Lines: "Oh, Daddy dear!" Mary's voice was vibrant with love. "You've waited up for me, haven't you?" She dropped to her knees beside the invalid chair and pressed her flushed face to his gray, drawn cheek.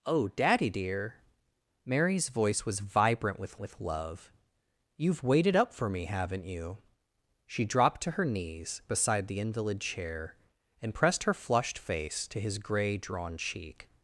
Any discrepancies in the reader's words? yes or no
yes